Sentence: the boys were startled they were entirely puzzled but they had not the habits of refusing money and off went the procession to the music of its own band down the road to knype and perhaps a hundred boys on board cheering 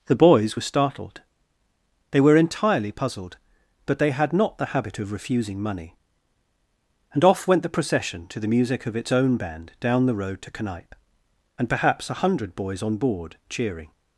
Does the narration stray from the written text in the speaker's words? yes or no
yes